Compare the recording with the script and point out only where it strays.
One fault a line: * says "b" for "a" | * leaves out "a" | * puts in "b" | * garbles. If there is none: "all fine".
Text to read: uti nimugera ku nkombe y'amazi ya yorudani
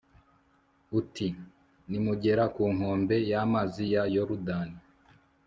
all fine